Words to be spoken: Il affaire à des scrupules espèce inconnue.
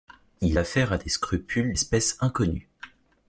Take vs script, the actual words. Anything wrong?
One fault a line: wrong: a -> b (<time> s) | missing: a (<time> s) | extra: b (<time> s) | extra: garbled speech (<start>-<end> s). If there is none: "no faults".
no faults